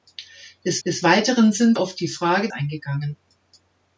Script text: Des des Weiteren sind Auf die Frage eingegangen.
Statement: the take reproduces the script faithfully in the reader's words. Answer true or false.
true